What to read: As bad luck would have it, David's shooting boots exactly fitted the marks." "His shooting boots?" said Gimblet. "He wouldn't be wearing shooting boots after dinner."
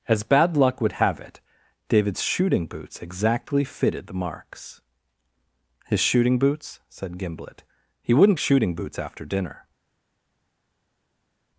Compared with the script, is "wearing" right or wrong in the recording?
wrong